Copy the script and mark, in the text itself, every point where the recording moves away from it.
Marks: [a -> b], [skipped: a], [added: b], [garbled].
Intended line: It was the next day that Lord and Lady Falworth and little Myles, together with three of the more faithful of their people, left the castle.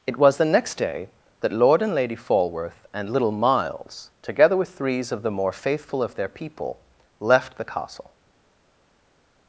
It was the next day that Lord and Lady Falworth and little Myles, together with [three -> threes] of the more faithful of their people, left the castle.